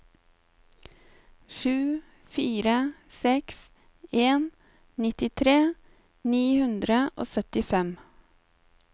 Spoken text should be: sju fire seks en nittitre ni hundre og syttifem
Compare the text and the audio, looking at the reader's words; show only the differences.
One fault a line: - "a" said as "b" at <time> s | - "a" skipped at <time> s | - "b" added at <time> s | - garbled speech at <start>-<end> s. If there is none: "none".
none